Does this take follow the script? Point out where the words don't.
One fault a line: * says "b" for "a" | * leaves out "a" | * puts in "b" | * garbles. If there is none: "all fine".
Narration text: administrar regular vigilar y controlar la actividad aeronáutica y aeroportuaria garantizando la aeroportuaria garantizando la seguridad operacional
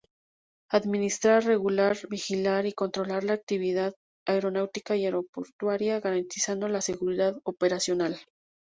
* leaves out "aeroportuaria garantizando la"